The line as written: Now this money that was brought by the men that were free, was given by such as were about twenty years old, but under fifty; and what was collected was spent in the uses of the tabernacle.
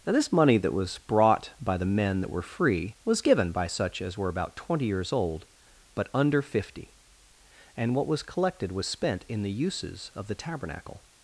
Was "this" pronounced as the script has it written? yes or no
yes